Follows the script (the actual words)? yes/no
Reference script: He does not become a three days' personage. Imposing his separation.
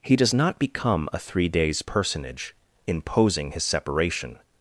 yes